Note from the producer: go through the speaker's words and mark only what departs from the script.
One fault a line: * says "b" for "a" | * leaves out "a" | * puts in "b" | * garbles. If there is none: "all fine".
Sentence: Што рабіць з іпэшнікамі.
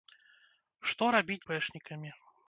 * leaves out "з"